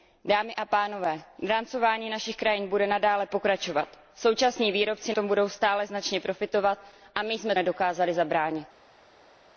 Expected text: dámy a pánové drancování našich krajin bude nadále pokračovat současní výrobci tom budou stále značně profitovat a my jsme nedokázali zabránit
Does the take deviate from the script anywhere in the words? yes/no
no